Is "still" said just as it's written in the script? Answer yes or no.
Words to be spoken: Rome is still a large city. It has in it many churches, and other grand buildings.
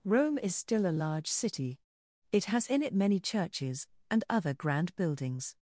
yes